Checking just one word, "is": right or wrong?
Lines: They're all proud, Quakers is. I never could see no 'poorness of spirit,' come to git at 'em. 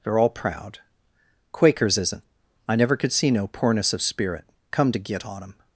wrong